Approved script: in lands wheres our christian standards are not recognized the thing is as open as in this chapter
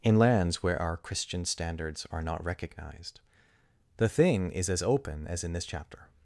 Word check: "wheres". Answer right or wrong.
wrong